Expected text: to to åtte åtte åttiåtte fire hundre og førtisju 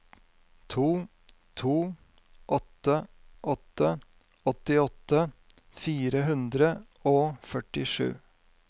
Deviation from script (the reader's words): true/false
false